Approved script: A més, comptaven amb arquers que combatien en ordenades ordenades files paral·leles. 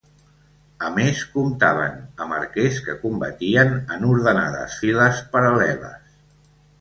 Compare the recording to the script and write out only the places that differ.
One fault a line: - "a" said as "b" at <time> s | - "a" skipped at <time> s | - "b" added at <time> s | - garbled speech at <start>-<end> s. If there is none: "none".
- "ordenades" skipped at 4.8 s